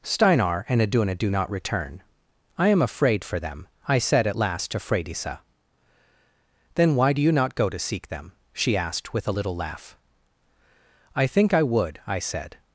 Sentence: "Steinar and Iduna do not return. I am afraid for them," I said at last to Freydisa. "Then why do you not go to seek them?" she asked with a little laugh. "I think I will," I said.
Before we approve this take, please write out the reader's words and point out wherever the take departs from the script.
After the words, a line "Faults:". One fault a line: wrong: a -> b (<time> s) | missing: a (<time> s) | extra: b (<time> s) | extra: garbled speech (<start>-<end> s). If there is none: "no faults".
"Steinar and Iduna do not return. I am afraid for them," I said at last to Freydisa. "Then why do you not go to seek them?" she asked with a little laugh. "I think I would," I said.
Faults:
wrong: will -> would (11.6 s)